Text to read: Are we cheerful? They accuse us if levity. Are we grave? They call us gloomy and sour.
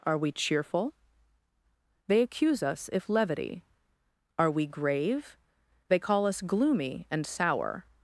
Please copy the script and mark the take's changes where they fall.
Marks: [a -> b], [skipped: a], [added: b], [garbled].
Are we cheerful? They accuse us if levity. Are we grave? They call us gloomy and sour.